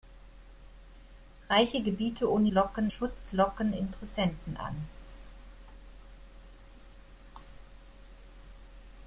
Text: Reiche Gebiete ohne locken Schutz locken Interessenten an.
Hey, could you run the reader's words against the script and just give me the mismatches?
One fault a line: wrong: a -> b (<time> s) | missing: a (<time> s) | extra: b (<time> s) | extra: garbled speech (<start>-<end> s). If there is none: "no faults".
no faults